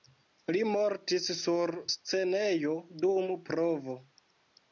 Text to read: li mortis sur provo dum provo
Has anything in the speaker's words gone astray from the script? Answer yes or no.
yes